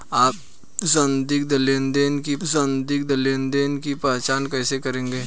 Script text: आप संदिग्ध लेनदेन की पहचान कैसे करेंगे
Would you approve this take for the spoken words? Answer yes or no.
no